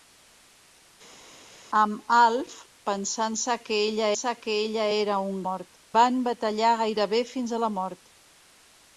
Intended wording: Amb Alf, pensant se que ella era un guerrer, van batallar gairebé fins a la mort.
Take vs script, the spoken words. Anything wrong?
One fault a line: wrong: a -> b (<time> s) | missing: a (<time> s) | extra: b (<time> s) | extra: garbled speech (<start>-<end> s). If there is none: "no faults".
extra: se que ella (4.2 s)
wrong: guerrer -> mort (5.5 s)